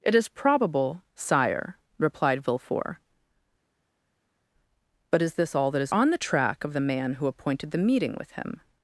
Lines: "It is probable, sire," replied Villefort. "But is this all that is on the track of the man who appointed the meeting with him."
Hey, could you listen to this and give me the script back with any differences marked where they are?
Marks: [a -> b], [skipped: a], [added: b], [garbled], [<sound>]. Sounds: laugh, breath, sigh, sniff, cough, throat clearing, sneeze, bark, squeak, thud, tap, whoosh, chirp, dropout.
"It is probable, sire," replied Villefort. "But is this all that is on the track of the man who appointed the meeting with him."